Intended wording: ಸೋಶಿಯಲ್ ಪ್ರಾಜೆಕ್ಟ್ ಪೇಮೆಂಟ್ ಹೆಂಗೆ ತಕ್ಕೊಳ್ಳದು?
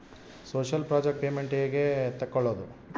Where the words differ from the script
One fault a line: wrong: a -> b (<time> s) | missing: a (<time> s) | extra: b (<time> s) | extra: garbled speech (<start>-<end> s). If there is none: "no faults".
no faults